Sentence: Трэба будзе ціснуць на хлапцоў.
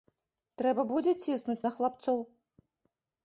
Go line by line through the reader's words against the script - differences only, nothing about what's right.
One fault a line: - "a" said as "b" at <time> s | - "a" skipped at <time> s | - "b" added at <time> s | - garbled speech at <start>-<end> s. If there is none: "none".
none